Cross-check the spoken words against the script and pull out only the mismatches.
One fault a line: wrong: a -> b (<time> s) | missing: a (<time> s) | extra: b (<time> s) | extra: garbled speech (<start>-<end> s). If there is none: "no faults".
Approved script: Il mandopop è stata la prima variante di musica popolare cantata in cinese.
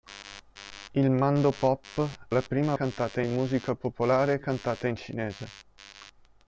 missing: è stata (2.3 s)
wrong: variante -> cantata (2.7 s)